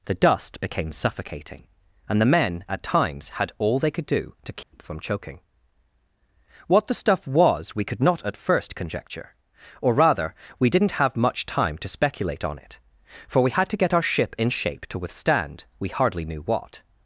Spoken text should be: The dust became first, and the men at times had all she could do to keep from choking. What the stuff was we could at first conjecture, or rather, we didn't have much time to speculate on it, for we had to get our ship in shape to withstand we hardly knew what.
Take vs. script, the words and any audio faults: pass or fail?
fail